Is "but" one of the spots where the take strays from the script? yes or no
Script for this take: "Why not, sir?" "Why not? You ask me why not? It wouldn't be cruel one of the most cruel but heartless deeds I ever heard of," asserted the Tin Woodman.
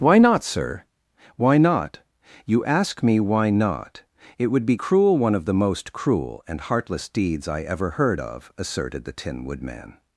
yes